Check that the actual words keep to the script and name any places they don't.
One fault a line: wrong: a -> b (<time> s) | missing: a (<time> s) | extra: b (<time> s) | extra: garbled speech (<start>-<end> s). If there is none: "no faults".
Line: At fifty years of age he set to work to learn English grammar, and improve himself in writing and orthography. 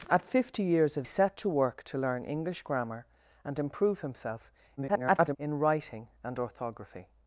missing: age he (1.1 s)
extra: garbled speech (4.8-5.4 s)